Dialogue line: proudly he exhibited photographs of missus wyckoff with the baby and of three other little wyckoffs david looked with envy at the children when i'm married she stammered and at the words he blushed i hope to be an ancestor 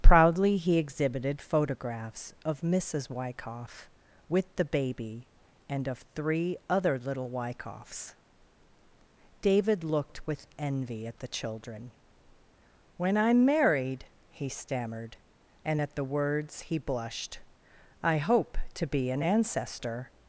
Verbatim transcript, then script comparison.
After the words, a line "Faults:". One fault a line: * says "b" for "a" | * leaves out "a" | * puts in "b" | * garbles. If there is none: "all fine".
proudly he exhibited photographs of missus wyckoff with the baby and of three other little wyckoffs david looked with envy at the children when i'm married he stammered and at the words he blushed i hope to be an ancestor
Faults:
* says "he" for "she"